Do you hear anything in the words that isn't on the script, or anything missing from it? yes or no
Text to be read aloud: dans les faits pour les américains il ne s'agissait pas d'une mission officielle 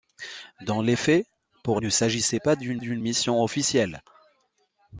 yes